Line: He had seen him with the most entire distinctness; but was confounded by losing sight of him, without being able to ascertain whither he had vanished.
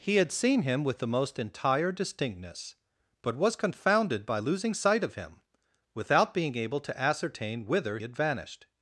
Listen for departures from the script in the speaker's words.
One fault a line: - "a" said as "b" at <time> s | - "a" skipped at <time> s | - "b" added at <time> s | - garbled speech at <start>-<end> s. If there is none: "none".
- "he" skipped at 8.0 s